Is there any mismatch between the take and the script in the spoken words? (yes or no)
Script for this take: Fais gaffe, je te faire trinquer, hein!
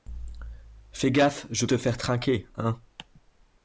no